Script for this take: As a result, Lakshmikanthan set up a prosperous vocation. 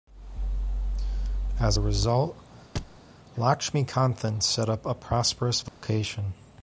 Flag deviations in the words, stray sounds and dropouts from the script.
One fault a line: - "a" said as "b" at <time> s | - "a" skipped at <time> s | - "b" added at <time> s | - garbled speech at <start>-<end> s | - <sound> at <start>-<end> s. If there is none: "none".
- thud at 2.8-3.0 s
- dropout at 5.7-5.8 s